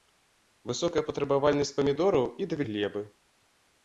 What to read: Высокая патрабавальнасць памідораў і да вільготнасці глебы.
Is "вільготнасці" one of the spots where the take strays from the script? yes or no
yes